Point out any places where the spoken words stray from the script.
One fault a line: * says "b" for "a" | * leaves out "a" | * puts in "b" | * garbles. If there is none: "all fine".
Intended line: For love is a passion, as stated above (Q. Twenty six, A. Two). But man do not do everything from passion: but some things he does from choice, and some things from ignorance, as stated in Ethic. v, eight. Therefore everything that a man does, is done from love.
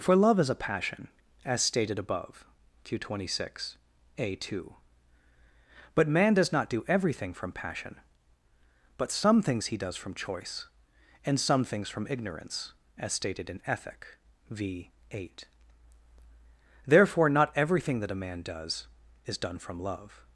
* says "does" for "do"
* puts in "not"